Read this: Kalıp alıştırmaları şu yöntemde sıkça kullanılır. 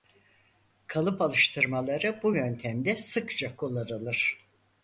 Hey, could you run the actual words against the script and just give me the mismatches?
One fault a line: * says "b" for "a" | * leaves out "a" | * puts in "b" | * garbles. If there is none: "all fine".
* says "bu" for "şu"